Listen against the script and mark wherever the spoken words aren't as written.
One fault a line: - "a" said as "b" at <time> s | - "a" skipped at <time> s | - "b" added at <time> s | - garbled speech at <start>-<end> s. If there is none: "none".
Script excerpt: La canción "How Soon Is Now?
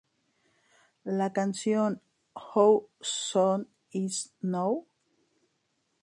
none